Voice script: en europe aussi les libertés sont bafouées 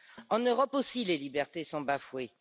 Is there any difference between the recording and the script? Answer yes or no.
no